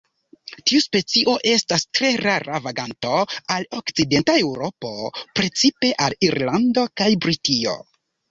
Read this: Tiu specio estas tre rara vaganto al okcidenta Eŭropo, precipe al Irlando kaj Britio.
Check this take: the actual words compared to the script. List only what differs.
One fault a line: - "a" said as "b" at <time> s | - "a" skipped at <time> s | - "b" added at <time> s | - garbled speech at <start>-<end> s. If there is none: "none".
none